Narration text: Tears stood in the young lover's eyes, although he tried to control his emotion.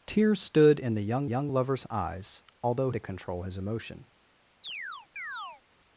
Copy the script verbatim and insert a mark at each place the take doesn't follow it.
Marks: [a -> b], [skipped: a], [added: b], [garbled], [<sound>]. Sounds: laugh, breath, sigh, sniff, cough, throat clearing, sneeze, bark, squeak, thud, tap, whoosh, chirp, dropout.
Tears stood in the young [added: young] lover's eyes, although [skipped: he tried] to control his emotion. [chirp]